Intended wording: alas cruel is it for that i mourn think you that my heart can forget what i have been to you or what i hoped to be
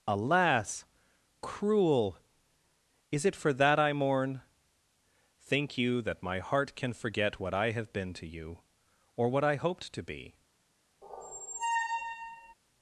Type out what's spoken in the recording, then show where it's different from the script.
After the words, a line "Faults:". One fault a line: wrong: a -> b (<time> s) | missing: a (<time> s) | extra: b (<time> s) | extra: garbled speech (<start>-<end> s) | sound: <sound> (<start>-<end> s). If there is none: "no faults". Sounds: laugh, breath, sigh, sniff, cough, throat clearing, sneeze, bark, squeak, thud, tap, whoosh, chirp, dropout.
alas cruel is it for that i mourn think you that my heart can forget what i have been to you or what i hoped to be
Faults:
sound: squeak (11.0-12.5 s)